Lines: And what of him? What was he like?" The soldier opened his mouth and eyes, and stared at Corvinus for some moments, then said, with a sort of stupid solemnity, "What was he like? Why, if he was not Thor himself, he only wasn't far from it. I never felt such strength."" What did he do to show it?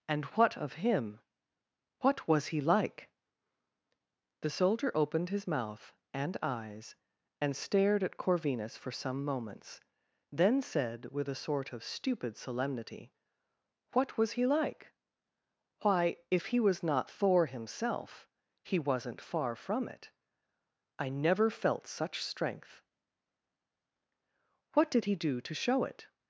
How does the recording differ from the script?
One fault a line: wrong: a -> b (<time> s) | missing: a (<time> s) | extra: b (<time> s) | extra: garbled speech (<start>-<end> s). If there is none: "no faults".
missing: only (18.8 s)